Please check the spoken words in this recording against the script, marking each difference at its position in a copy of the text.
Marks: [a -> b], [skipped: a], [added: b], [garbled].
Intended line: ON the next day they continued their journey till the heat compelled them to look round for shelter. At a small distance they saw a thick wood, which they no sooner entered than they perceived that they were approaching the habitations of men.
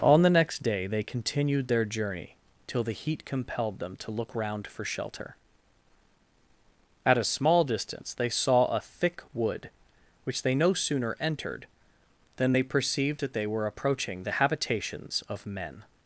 ON the next day they continued their journey till the heat compelled them to look round for shelter. At a small distance they saw a thick wood, which they no sooner entered than they perceived that they were approaching the habitations of men.